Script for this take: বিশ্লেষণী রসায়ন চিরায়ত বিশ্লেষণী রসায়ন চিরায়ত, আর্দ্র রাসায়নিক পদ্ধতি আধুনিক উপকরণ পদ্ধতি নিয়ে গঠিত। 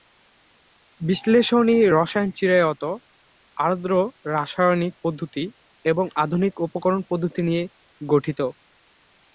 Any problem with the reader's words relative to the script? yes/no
yes